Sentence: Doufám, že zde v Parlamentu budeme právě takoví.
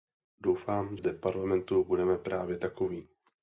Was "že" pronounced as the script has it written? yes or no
no